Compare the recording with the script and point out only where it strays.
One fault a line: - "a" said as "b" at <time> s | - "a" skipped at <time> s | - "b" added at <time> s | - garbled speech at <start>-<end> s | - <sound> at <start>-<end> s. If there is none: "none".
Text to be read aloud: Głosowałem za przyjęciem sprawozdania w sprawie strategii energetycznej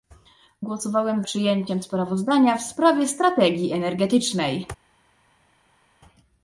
- "za" skipped at 1.2 s